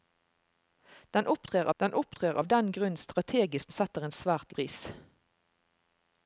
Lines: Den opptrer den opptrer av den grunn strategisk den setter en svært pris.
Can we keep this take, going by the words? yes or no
yes